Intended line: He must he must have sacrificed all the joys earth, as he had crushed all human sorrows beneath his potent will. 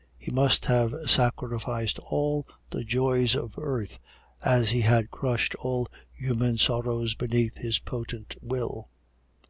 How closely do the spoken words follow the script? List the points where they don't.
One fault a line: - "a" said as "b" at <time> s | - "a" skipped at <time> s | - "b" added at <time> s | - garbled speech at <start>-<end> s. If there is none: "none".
- "he must" skipped at 0.7 s
- "of" added at 3.4 s